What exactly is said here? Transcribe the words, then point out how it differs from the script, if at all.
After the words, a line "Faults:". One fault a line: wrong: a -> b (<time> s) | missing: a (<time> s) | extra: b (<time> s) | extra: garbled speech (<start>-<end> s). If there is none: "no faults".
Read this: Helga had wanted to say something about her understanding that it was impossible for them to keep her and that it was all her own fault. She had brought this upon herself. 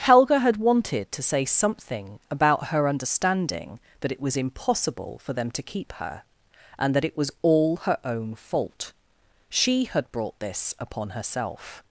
Helga had wanted to say something about her understanding that it was impossible for them to keep her and that it was all her own fault. She had brought this upon herself.
Faults:
no faults